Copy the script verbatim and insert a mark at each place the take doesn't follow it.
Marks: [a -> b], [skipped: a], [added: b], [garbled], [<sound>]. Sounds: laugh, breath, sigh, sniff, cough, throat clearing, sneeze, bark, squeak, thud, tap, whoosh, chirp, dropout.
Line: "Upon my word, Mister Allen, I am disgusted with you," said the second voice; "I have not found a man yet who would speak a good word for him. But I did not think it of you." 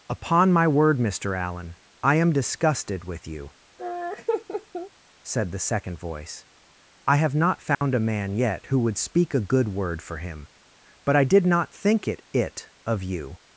"Upon my word, Mister Allen, I am disgusted with you," [laugh] said the second voice; "I have not found [dropout] a man yet who would speak a good word for him. But I did not think it [added: it] of you."